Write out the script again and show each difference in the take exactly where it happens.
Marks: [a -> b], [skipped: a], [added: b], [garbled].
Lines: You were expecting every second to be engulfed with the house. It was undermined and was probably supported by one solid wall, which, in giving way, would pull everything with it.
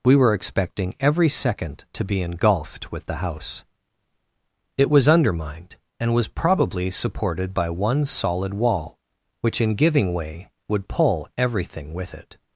[You -> We] were expecting every second to be engulfed with the house. It was undermined and was probably supported by one solid wall, which, in giving way, would pull everything with it.